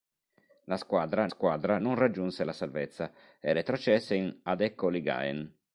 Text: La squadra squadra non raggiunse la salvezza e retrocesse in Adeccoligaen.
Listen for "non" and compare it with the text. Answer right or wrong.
right